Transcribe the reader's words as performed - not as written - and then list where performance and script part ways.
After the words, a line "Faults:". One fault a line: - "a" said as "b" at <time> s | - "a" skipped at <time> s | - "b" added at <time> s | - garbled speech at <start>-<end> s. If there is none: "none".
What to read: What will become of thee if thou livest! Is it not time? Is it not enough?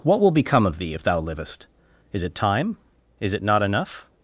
What will become of thee if thou livest! Is it time? Is it not enough?
Faults:
- "not" skipped at 2.3 s